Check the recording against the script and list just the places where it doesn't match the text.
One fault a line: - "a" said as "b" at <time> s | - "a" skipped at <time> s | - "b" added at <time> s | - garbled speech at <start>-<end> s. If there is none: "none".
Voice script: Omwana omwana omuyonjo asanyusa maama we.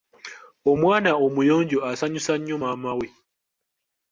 - "omwana" skipped at 1.1 s
- "nnyo" added at 2.4 s